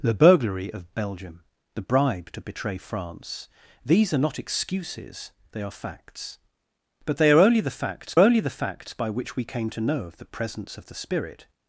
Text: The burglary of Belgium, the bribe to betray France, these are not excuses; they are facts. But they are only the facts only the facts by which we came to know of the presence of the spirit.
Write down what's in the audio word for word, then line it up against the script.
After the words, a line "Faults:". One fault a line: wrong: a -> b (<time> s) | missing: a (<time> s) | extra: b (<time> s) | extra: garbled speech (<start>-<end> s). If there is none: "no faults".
The burglary of Belgium, the bribe to betray France, these are not excuses; they are facts. But they are only the facts only the facts by which we came to know of the presence of the spirit.
Faults:
no faults